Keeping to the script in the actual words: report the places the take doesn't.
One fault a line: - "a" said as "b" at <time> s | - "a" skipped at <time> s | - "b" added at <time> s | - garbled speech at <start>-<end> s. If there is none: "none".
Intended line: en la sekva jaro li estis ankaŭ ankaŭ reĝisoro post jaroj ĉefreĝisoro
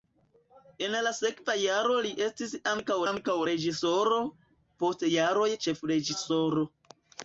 none